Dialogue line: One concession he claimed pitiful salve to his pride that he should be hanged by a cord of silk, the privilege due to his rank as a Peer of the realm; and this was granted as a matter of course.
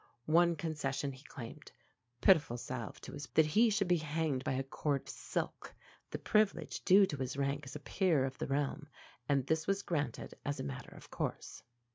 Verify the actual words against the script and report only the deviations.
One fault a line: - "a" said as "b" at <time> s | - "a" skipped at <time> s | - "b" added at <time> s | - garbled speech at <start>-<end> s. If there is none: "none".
- "pride" skipped at 3.3 s
- "of" skipped at 5.1 s